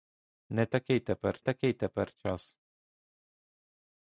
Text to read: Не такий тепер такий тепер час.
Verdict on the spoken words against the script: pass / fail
pass